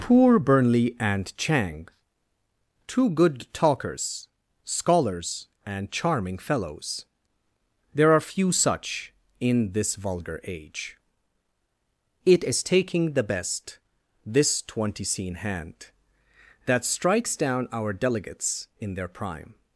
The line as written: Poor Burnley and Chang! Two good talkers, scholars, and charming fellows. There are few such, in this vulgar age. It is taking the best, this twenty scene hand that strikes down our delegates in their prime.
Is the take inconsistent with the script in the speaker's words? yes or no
no